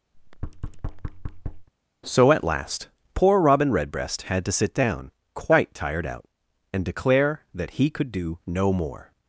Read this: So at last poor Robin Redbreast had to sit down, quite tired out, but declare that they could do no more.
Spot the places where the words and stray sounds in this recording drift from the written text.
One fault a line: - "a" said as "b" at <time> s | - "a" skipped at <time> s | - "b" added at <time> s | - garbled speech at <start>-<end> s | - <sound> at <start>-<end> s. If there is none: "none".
- thud at 0.1-1.7 s
- "but" said as "and" at 6.7 s
- "they" said as "he" at 7.7 s